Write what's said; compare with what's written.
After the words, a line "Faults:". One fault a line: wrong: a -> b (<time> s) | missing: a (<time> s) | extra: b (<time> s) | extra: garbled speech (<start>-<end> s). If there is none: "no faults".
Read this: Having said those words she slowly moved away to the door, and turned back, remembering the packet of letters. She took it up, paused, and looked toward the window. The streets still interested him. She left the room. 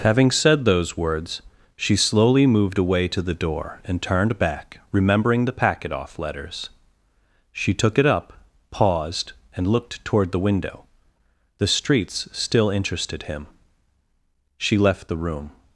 Having said those words she slowly moved away to the door, and turned back, remembering the packet off letters. She took it up, paused, and looked toward the window. The streets still interested him. She left the room.
Faults:
wrong: of -> off (5.9 s)